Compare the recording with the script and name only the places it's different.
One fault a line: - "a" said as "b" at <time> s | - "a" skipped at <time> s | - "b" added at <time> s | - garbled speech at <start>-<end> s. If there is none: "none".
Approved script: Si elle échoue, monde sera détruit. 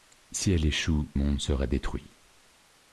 none